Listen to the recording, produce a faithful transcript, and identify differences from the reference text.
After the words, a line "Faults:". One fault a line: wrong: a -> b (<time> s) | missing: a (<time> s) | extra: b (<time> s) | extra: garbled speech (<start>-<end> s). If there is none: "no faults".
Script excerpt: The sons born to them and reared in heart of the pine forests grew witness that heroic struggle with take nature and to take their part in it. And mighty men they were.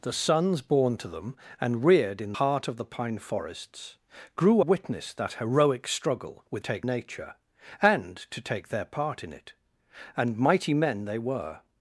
The sons born to them and reared in heart of the pine forests grew witness that heroic struggle with take nature and to take their part in it. And mighty men they were.
Faults:
no faults